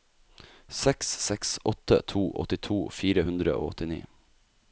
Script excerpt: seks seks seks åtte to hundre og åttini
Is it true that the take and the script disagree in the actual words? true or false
true